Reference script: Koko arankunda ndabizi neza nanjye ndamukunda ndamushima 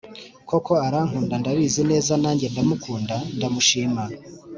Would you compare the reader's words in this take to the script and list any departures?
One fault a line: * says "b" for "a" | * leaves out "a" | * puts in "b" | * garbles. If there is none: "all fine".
all fine